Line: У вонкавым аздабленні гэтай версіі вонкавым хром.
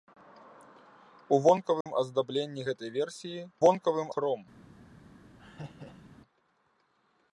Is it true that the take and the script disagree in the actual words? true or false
false